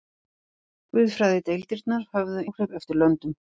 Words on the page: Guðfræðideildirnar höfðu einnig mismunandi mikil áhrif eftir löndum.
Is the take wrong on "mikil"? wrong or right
wrong